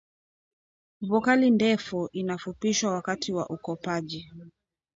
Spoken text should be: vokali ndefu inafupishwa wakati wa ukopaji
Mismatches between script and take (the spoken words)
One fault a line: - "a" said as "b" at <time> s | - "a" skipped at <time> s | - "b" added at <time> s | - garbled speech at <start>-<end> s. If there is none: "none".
none